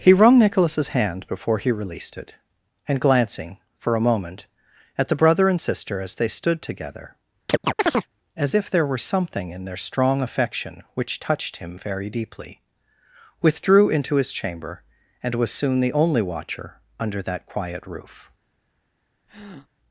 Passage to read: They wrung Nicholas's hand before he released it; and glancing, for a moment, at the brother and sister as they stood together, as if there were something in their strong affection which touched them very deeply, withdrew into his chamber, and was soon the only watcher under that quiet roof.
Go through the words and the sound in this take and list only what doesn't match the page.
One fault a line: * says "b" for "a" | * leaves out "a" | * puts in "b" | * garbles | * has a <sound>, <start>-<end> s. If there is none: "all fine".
* says "He" for "They"
* has a chirp, 7.5-8.1 s
* says "him" for "them"
* has a breath, 19.3-19.7 s